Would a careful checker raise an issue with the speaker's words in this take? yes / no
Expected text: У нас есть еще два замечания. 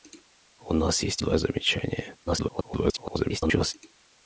yes